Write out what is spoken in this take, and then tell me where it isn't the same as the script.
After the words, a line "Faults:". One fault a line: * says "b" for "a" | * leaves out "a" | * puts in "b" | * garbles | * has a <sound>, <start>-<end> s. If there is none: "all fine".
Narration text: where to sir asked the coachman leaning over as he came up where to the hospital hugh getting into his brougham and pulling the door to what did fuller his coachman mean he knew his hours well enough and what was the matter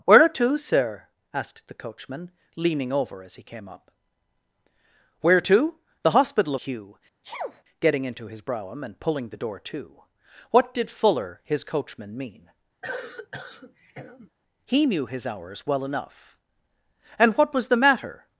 where to sir asked the coachman leaning over as he came up where to the hospital hugh getting into his brougham and pulling the door to what did fuller his coachman mean he knew his hours well enough and what was the matter
Faults:
* has a sneeze, 7.2-7.6 s
* has a cough, 12.8-14.3 s